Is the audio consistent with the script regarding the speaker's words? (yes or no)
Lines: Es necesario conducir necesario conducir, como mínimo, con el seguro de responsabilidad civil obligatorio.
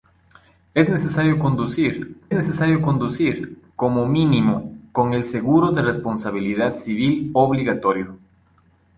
yes